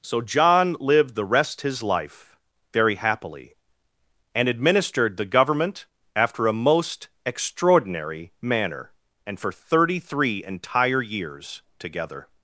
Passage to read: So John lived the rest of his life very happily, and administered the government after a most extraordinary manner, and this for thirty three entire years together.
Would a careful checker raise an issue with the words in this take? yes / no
yes